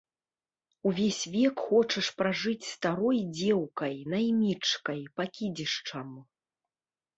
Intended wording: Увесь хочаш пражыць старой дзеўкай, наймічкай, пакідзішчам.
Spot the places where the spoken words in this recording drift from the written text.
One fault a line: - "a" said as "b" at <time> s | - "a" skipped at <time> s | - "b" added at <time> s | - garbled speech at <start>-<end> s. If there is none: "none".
- "век" added at 1.4 s